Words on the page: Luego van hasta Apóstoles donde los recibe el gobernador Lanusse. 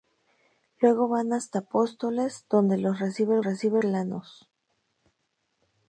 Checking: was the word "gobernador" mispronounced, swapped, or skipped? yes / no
yes